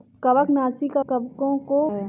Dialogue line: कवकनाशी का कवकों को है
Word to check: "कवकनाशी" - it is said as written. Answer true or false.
true